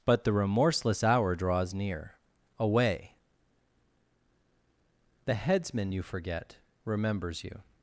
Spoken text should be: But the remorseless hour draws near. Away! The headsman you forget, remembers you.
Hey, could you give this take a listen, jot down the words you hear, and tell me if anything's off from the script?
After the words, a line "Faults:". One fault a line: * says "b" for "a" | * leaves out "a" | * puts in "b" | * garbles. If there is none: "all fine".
But the remorseless hour draws near. Away! The headsman you forget, remembers you.
Faults:
all fine